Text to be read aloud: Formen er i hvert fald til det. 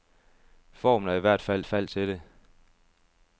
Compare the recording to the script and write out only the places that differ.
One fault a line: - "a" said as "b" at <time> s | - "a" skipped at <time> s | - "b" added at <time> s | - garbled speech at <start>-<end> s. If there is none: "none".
- "fald" added at 1.7 s